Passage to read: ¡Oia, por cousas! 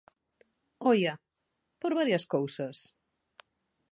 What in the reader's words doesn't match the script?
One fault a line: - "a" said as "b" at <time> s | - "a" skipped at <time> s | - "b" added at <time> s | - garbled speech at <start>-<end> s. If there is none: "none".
- "varias" added at 2.0 s